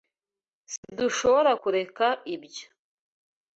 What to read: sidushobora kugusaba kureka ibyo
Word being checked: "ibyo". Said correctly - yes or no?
yes